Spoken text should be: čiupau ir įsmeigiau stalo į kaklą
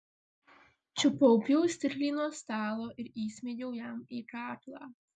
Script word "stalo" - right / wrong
wrong